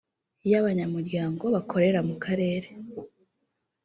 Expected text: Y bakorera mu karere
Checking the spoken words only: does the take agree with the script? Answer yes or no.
no